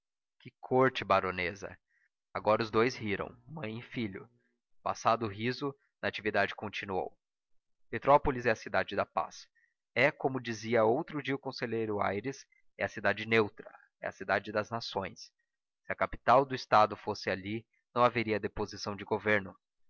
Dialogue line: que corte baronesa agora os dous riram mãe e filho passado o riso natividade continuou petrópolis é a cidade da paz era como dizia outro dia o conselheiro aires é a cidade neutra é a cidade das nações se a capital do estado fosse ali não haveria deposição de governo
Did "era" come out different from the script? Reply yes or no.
yes